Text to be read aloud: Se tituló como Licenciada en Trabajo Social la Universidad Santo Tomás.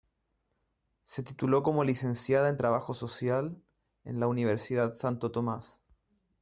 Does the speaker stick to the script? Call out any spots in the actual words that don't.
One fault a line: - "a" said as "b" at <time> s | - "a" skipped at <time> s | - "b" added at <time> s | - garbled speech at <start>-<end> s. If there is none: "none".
- "en" added at 4.0 s